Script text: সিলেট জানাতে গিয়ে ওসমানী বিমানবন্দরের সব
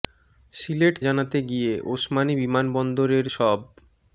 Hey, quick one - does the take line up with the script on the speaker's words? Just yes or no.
yes